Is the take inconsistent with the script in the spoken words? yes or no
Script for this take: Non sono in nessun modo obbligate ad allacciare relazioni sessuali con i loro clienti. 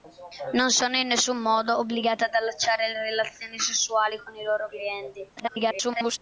yes